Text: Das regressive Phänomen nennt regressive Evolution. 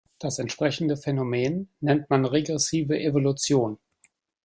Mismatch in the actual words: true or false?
true